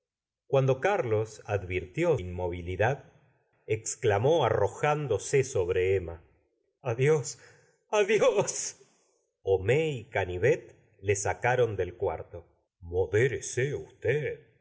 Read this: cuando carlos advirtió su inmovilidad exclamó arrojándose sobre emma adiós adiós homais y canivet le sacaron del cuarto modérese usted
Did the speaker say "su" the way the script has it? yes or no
no